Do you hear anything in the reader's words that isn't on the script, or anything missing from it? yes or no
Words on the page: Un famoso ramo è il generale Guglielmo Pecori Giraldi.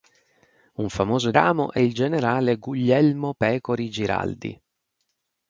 no